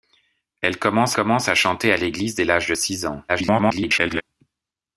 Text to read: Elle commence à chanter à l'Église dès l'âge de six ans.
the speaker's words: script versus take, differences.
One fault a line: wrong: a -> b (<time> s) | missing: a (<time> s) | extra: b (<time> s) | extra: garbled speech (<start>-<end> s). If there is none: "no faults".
extra: commence (1.1 s)
extra: garbled speech (3.3-4.2 s)